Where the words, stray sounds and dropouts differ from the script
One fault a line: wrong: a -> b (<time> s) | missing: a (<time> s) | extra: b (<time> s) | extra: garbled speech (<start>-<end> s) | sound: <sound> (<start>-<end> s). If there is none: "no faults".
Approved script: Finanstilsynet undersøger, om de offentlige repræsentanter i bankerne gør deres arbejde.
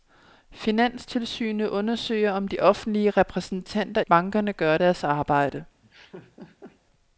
missing: i (4.0 s)
sound: laugh (5.8-6.8 s)